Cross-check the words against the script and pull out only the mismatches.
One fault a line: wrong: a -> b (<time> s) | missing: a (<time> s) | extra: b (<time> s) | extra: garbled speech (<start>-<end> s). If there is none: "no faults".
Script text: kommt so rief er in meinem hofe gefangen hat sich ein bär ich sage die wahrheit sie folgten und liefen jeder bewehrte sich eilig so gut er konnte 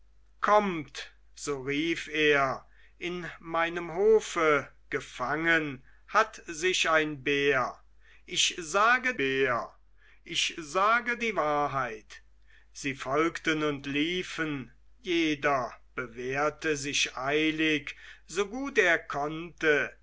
extra: bär ich sage (9.2 s)